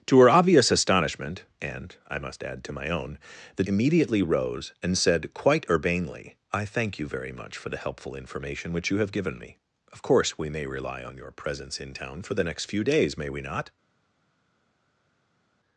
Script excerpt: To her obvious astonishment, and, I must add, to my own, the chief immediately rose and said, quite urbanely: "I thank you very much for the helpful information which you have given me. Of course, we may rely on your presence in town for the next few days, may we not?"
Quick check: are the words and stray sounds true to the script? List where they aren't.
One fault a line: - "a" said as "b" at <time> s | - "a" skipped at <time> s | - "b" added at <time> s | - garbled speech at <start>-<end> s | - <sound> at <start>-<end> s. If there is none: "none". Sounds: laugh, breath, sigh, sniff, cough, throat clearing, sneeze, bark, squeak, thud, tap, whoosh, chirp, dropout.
- "chief" skipped at 3.6 s